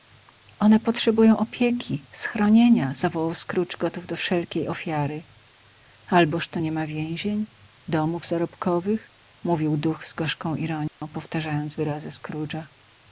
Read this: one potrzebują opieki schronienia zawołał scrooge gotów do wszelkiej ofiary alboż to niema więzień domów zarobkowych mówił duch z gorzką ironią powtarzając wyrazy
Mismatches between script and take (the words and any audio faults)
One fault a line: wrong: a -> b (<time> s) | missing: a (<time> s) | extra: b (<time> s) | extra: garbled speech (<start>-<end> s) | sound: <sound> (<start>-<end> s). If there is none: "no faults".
sound: dropout (10.9-11.0 s)